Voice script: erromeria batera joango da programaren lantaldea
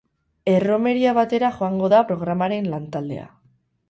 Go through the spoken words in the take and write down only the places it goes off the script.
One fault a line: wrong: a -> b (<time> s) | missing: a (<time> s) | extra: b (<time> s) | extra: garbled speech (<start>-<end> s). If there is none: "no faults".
no faults